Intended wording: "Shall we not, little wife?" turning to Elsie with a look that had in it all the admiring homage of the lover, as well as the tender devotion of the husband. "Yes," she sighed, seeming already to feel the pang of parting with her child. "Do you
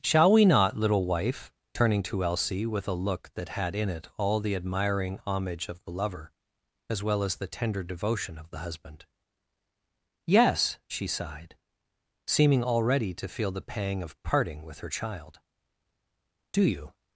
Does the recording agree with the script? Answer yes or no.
yes